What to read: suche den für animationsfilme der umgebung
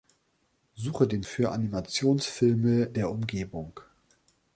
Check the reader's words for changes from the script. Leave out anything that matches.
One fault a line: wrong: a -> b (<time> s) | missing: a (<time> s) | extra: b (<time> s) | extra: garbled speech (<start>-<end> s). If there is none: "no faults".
no faults